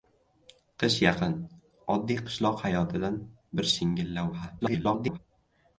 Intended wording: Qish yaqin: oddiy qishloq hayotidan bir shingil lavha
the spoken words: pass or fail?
fail